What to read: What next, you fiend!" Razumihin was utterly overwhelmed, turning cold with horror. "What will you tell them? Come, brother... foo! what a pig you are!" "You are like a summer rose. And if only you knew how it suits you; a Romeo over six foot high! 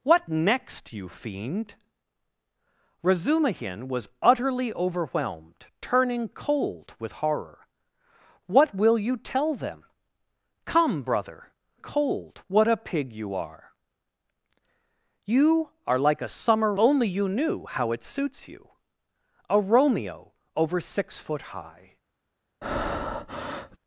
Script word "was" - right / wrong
right